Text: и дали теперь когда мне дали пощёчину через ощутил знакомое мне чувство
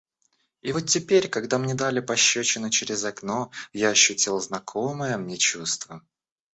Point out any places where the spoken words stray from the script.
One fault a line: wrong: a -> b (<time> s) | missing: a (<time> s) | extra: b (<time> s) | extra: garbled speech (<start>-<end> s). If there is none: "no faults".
wrong: дали -> вот (0.7 s)
extra: окно я (3.0 s)